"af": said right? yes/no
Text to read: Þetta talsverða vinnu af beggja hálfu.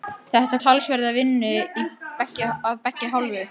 yes